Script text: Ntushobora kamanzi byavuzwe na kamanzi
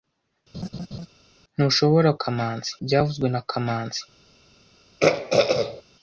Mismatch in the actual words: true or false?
false